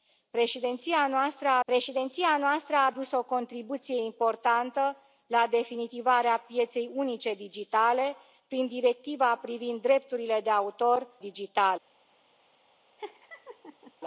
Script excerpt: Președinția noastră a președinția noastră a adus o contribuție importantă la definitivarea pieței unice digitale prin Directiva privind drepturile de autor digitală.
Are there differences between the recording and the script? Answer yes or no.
no